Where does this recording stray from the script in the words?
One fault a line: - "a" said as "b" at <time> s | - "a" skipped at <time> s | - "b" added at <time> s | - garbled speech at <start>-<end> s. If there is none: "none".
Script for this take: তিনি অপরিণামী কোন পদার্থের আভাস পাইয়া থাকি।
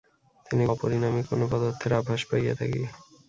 none